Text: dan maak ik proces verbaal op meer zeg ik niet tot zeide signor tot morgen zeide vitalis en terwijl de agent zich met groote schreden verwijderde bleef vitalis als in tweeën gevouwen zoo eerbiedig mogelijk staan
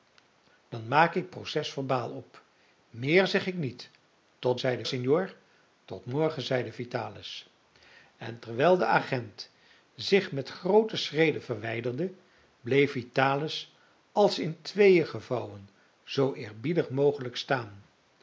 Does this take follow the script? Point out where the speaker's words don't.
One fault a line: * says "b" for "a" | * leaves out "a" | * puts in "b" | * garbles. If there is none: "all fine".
all fine